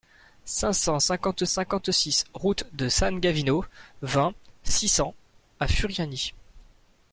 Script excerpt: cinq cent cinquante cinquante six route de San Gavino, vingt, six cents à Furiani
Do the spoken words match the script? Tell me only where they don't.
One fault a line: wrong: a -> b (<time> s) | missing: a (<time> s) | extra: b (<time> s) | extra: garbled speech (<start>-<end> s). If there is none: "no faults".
no faults